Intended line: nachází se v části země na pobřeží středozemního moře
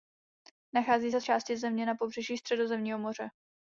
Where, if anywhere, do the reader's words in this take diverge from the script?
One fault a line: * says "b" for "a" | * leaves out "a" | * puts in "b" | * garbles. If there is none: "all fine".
all fine